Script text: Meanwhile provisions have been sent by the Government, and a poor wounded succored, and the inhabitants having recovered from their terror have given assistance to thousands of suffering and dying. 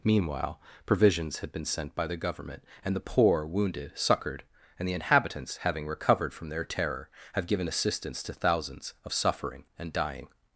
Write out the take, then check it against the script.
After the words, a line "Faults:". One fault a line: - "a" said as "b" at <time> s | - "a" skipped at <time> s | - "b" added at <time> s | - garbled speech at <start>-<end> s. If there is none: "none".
Meanwhile provisions had been sent by the Government, and the poor wounded succored, and the inhabitants having recovered from their terror have given assistance to thousands of suffering and dying.
Faults:
- "have" said as "had" at 1.4 s
- "a" said as "the" at 3.0 s